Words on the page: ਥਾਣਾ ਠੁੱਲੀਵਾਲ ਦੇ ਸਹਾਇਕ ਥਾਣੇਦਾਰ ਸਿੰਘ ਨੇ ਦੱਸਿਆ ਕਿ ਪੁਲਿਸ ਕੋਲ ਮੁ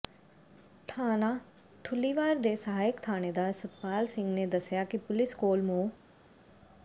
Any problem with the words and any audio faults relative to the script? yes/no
yes